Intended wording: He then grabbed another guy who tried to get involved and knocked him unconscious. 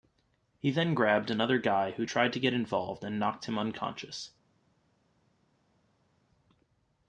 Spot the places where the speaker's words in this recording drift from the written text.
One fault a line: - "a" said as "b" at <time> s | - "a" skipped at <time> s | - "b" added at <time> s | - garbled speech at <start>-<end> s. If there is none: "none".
none